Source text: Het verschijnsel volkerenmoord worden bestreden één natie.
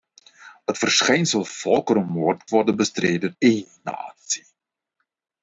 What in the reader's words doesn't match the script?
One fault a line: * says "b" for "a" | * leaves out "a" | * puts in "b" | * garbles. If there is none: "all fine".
all fine